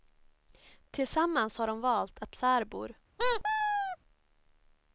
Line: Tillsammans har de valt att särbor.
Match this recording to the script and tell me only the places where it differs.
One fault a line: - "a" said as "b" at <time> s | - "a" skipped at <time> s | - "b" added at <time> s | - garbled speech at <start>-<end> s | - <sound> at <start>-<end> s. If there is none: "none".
- squeak at 3.2-4.0 s